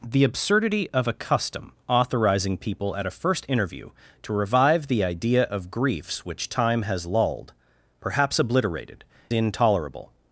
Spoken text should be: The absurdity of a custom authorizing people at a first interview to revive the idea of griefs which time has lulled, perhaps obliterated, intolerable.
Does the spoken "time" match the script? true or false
true